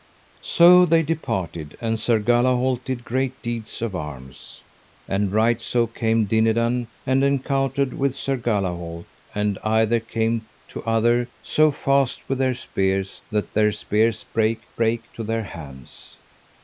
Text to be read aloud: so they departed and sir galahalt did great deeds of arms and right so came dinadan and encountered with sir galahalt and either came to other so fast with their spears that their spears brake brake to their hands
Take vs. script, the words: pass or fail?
pass